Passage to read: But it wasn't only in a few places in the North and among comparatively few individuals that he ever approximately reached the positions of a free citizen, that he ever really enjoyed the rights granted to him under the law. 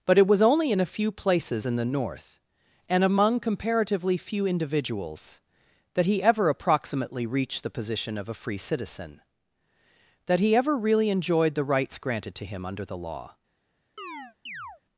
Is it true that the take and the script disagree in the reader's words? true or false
true